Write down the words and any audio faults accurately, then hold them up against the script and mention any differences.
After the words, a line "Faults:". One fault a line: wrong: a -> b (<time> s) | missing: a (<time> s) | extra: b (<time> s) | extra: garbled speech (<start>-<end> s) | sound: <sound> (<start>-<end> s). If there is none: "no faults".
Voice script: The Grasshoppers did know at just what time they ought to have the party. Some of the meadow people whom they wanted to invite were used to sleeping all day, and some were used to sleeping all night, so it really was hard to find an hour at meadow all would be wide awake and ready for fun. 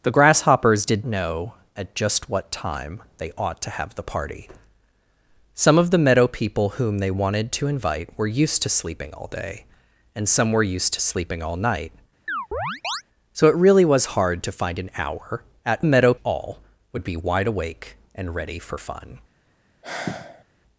The Grasshoppers did know at just what time they ought to have the party. Some of the meadow people whom they wanted to invite were used to sleeping all day, and some were used to sleeping all night, so it really was hard to find an hour at meadow all would be wide awake and ready for fun.
Faults:
sound: chirp (12.3-13.0 s)
sound: sigh (19.8-20.4 s)